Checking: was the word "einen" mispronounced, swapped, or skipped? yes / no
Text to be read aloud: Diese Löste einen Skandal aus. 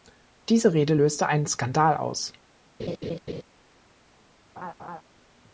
no